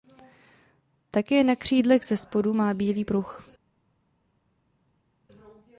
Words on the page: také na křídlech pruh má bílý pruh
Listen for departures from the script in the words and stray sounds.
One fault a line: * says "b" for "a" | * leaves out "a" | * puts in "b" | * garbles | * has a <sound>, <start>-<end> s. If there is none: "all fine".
* says "zespodu" for "pruh"